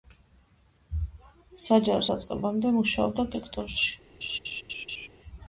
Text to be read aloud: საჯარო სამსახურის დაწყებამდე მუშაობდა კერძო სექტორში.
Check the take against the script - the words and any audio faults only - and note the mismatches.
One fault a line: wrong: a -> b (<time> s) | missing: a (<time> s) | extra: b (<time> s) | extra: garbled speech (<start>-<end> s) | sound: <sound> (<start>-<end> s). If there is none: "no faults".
missing: სამსახურის (2.1 s)
missing: კერძო (3.3 s)
sound: laugh (4.2-5.1 s)